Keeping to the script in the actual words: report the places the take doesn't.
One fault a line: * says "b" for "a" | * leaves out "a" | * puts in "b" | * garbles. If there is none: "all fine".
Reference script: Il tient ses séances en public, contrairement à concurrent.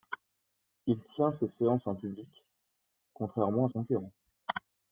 all fine